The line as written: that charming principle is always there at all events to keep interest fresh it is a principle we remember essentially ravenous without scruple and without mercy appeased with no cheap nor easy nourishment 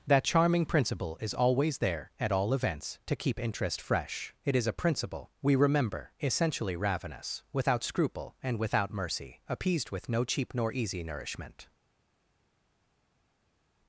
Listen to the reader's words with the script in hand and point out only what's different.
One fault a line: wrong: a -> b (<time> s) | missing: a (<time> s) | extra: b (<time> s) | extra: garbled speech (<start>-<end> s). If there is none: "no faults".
no faults